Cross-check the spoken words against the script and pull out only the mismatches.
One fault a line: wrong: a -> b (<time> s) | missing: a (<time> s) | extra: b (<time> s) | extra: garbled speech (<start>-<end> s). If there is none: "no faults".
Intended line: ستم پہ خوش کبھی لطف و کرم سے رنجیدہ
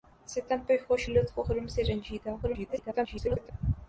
missing: کبھی (1.0 s)
extra: garbled speech (2.4-3.5 s)